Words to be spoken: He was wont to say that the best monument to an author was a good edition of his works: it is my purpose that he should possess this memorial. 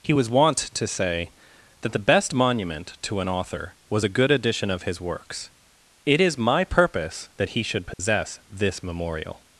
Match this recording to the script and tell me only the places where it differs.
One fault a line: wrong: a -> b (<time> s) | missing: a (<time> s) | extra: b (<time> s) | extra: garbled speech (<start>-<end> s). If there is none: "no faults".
no faults